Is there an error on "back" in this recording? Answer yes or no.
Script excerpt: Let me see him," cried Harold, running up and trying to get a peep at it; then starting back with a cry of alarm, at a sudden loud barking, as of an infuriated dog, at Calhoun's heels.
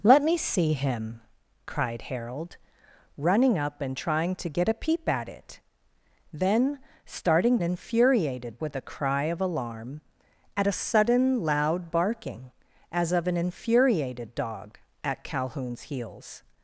yes